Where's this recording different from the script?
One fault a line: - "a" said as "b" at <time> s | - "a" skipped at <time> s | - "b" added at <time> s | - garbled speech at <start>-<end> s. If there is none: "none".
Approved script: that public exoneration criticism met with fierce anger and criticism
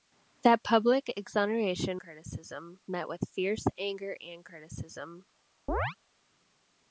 none